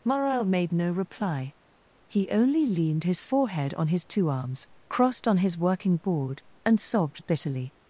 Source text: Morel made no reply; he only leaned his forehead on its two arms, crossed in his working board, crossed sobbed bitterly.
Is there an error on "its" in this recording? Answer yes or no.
yes